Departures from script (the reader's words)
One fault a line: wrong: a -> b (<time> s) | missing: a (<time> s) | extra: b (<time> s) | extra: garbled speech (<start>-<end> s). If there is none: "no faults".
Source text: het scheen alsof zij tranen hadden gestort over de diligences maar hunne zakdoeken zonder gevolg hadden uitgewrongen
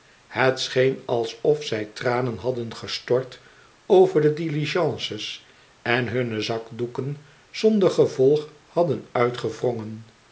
wrong: maar -> en (5.8 s)